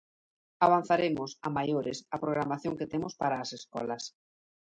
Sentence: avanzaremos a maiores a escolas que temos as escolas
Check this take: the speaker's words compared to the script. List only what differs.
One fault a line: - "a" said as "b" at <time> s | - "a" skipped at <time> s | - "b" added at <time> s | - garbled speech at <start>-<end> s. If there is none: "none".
- "escolas" said as "programación" at 2.2 s
- "para" added at 3.2 s